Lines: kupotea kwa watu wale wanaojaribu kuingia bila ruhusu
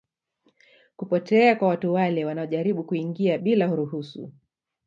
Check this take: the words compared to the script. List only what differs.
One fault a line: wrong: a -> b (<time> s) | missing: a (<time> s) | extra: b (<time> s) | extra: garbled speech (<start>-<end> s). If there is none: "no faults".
no faults